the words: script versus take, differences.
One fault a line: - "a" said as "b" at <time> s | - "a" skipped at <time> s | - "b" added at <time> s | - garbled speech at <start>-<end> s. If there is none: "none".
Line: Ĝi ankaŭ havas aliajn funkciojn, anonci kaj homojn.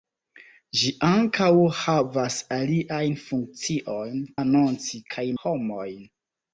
none